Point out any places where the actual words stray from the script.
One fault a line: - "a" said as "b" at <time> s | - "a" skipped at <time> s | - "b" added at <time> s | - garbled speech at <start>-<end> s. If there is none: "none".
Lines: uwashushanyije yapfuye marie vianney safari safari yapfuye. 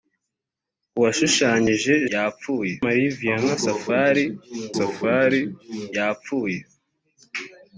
none